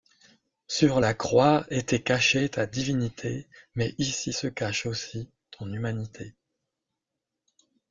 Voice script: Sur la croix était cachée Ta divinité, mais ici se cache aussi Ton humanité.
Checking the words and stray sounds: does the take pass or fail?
pass